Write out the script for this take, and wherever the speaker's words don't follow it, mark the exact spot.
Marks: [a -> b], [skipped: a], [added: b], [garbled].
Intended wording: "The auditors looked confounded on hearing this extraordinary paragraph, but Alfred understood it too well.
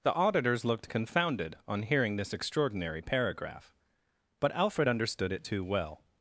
"The auditors looked confounded on hearing this extraordinary paragraph, but Alfred understood it too well.